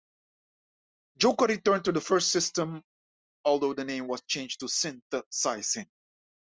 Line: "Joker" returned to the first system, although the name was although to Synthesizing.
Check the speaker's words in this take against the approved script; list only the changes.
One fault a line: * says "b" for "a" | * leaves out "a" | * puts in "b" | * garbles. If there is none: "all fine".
* says "changed" for "although"